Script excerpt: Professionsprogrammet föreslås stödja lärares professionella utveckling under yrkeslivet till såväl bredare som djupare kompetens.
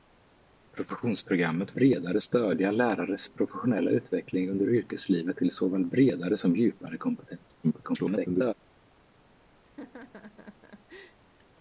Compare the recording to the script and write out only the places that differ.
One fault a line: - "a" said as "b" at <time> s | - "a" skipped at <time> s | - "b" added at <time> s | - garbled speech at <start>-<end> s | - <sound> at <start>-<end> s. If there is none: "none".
- "föreslås" said as "bredare" at 1.7 s
- garbled speech at 7.6-8.5 s
- laugh at 9.7-11.2 s